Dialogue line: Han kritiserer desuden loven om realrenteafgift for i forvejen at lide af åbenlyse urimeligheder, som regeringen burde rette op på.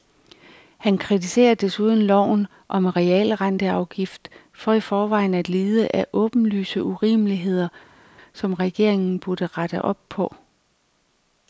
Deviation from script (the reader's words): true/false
false